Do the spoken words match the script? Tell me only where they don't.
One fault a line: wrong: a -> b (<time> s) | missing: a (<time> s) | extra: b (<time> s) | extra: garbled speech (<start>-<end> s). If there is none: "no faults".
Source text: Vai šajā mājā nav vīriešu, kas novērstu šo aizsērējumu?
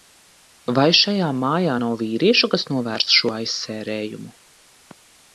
no faults